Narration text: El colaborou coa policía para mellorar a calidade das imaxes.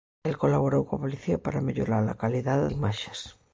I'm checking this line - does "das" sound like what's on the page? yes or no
no